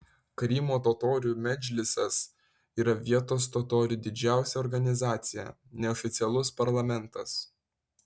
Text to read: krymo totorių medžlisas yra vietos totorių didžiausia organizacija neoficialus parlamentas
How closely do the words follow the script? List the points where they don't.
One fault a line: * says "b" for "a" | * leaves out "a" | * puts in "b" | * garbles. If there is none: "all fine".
all fine